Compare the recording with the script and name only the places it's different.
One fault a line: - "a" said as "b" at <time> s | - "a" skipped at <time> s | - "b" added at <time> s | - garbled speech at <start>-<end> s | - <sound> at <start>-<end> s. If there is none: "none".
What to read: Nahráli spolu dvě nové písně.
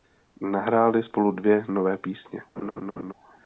- laugh at 2.6-3.1 s